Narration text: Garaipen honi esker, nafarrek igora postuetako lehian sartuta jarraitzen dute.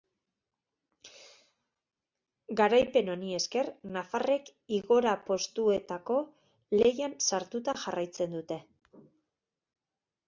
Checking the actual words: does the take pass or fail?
pass